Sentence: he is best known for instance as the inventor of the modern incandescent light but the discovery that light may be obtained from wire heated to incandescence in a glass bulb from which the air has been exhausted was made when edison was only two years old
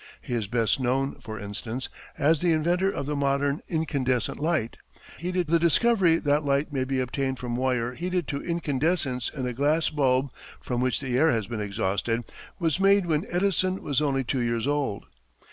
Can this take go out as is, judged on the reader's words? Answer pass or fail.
fail